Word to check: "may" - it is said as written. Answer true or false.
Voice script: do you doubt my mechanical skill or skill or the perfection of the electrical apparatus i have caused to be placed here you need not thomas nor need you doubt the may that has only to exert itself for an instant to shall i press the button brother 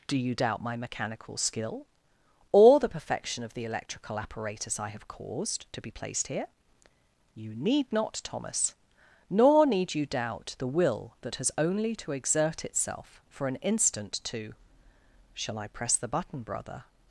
false